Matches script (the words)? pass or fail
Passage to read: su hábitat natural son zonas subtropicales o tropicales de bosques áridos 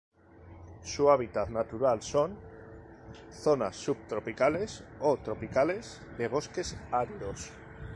pass